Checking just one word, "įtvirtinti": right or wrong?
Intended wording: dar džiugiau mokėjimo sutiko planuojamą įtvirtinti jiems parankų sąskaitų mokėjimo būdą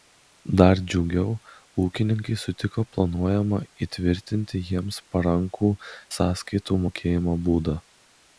right